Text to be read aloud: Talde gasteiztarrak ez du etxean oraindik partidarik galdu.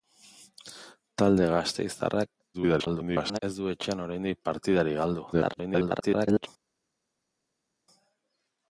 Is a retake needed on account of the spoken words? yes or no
yes